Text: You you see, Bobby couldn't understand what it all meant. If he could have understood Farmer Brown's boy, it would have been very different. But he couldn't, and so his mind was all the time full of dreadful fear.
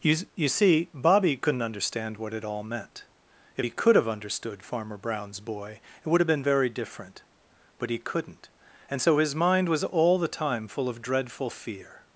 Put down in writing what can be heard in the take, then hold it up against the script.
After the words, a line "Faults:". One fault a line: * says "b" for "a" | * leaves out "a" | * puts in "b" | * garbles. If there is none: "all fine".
You you see, Bobby couldn't understand what it all meant. If he could have understood Farmer Brown's boy, it would have been very different. But he couldn't, and so his mind was all the time full of dreadful fear.
Faults:
all fine